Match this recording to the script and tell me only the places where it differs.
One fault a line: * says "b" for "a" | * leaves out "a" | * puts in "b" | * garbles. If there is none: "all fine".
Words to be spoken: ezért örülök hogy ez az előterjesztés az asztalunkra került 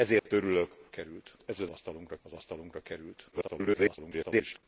* says "került" for "hogy"
* says "asztalunkra" for "előterjesztés"
* garbles